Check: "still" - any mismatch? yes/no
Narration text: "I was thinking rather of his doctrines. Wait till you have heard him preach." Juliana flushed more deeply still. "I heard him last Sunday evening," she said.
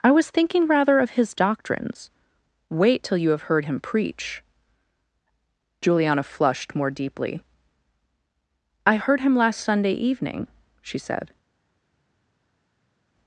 yes